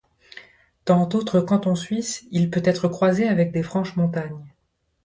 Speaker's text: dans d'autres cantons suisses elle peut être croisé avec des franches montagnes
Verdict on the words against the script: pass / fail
fail